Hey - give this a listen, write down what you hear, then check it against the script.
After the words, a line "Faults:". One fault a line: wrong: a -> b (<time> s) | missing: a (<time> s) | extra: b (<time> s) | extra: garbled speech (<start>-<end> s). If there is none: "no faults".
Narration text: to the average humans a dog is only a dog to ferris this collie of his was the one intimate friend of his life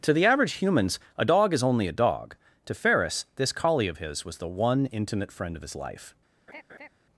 to the average humans a dog is only a dog to ferris this collie of his was the one intimate friend of his life
Faults:
no faults